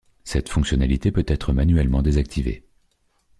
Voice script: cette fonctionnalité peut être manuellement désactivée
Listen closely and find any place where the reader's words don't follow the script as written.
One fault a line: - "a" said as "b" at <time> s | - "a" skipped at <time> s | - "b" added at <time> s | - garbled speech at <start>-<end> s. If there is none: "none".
none